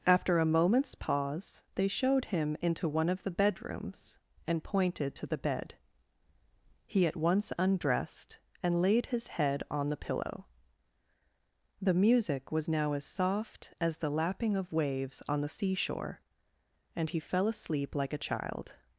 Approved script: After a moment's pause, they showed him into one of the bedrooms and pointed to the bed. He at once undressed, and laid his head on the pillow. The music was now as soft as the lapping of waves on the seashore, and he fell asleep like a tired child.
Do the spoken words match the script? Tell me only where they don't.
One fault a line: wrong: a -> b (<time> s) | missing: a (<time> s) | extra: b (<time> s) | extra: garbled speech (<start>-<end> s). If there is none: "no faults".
missing: tired (18.2 s)